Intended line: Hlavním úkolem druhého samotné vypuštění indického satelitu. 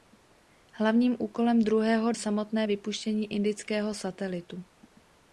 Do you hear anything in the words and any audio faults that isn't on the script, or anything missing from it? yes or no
no